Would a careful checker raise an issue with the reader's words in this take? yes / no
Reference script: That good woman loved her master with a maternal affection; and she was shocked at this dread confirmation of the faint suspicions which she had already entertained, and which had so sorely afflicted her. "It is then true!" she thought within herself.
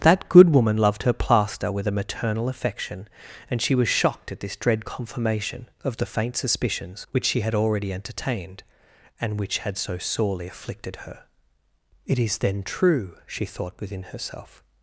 yes